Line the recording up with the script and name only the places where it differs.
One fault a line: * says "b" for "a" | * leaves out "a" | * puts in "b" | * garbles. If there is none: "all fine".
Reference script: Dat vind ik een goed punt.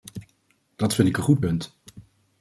all fine